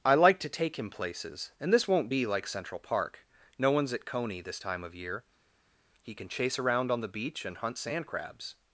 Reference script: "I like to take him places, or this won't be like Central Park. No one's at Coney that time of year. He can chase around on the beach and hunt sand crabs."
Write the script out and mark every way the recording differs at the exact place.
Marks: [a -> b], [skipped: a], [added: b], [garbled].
"I like to take him places, [or -> and] this won't be like Central Park. No one's at Coney [that -> this] time of year. He can chase around on the beach and hunt sand crabs."